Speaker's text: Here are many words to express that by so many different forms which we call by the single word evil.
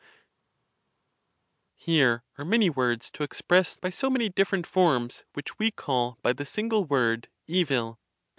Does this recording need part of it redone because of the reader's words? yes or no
yes